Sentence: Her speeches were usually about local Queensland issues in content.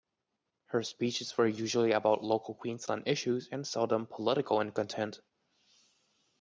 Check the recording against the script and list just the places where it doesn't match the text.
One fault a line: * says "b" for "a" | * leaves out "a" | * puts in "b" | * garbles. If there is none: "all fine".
* puts in "and seldom political"